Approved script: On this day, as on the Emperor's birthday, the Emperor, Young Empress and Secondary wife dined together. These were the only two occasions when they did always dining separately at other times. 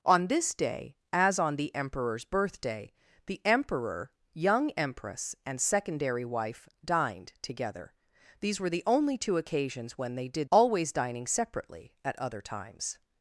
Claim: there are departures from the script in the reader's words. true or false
false